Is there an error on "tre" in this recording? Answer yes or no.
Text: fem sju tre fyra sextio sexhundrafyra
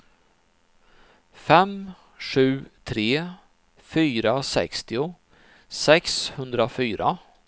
no